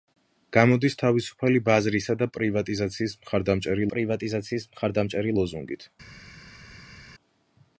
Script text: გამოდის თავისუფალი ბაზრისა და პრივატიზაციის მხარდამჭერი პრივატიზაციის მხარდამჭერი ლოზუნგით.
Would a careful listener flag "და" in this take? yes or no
no